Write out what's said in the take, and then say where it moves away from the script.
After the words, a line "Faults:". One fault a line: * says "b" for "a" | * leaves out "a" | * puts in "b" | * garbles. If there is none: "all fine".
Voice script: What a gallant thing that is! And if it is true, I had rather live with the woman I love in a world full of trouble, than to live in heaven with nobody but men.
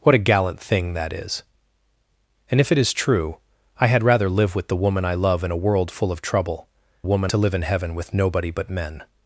What a gallant thing that is! And if it is true, I had rather live with the woman I love in a world full of trouble, woman to live in heaven with nobody but men.
Faults:
* says "woman" for "than"